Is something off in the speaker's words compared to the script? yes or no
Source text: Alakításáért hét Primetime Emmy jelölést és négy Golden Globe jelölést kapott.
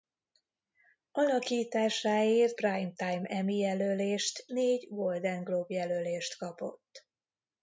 yes